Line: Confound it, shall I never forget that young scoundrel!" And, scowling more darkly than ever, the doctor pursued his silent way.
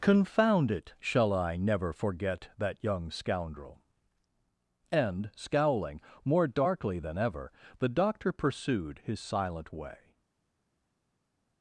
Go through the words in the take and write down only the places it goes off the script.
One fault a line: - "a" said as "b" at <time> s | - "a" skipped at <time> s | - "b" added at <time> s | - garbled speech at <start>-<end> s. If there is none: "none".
none